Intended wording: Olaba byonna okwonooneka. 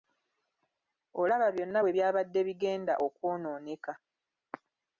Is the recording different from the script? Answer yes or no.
yes